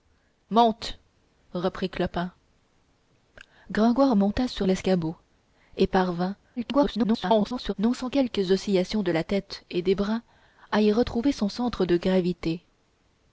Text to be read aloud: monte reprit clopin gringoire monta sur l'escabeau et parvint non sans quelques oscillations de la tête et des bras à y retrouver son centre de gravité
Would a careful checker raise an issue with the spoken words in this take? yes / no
yes